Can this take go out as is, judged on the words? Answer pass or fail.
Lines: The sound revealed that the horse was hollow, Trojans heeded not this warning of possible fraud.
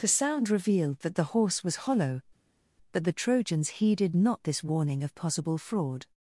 fail